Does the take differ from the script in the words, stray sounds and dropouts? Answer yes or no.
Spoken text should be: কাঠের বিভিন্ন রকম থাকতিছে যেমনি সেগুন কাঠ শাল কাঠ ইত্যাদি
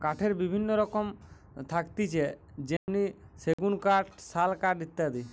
yes